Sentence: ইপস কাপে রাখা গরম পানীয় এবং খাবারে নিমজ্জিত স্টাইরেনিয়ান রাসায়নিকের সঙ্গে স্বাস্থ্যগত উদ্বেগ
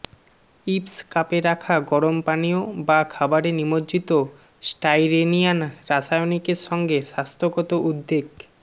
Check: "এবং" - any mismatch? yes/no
yes